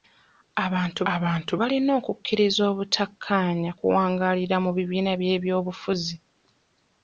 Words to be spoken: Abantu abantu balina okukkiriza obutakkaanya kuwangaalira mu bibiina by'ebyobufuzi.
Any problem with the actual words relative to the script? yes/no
no